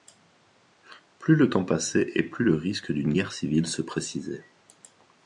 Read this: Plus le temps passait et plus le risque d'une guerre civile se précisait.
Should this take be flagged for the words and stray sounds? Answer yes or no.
no